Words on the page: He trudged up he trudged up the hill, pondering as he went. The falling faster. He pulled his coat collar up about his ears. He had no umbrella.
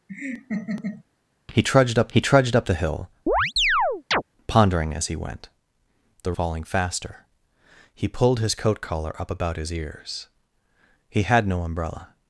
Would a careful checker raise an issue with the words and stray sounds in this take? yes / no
yes